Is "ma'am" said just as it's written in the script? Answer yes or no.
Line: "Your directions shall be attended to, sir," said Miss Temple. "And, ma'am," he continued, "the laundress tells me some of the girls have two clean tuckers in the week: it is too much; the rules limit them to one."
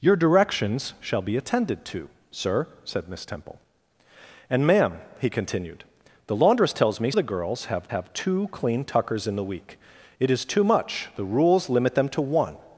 yes